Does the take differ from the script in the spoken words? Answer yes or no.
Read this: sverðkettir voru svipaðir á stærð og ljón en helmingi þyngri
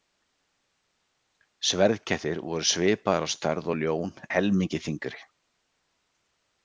yes